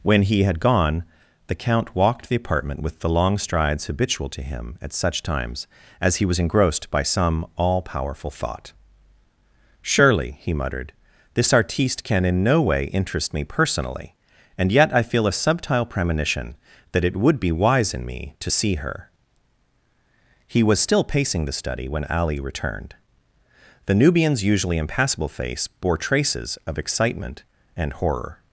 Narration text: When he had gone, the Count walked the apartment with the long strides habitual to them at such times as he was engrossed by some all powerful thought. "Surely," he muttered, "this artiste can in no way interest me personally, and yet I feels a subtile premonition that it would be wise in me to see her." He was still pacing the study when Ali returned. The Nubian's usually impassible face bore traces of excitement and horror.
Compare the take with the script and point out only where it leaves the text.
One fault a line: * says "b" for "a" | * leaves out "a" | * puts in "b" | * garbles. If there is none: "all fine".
* says "him" for "them"
* says "feel" for "feels"